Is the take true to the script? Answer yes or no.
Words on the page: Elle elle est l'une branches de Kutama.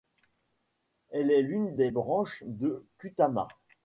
no